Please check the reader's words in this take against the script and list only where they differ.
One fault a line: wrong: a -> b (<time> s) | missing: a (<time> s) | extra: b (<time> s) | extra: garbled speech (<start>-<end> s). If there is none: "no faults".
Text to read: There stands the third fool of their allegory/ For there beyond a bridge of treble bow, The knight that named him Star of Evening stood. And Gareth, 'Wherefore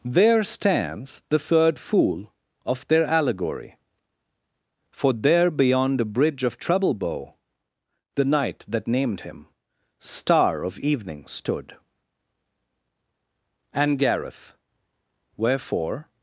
no faults